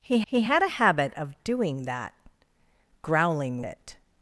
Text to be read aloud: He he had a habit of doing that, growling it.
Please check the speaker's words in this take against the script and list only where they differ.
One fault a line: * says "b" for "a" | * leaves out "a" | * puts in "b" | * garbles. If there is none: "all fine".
all fine